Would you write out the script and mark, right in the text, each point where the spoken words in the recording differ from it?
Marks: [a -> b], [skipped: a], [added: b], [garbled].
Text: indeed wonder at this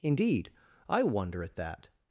indeed [added: i] wonder at [this -> that]